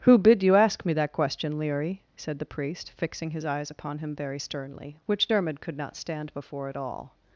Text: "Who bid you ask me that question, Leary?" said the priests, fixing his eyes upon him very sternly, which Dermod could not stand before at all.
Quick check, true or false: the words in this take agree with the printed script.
false